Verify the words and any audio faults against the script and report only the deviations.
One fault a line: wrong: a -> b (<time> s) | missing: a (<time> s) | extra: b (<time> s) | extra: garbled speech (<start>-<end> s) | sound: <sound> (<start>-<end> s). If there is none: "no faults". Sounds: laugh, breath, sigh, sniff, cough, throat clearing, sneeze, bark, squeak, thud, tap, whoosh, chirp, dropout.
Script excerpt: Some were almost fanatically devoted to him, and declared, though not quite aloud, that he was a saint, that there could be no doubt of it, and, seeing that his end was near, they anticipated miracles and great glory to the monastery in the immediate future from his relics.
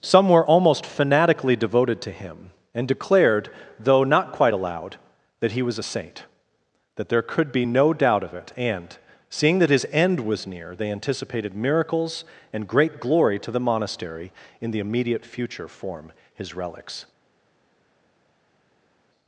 wrong: from -> form (15.7 s)